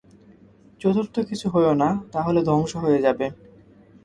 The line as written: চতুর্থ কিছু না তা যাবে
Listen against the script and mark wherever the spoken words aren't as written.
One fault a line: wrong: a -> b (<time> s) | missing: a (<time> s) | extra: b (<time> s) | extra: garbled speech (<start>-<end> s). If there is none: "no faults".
extra: হয়ো (1.5 s)
extra: হলে ধ্বংস হয়ে (2.2 s)